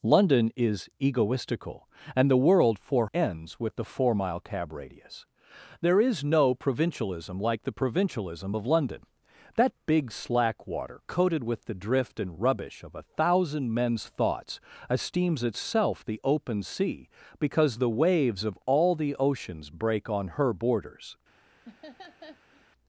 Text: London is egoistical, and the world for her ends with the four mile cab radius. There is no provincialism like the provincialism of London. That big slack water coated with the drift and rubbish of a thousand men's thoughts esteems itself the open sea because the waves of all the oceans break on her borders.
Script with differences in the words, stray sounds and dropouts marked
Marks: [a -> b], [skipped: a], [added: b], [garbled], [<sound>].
London is egoistical, and the world for [skipped: her] ends with the four mile cab radius. There is no provincialism like the provincialism of London. That big slack water coated with the drift and rubbish of a thousand men's thoughts esteems itself the open sea because the waves of all the oceans break on her borders. [laugh]